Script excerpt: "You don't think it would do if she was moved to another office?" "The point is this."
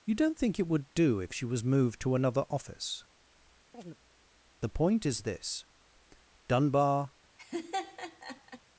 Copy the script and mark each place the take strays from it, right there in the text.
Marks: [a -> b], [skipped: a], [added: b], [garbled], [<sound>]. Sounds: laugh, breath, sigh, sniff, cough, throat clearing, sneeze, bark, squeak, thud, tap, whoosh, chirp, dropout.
"You don't think it would do if she was moved to another office?" [chirp] "The point is this." [added: Dunbar] [laugh]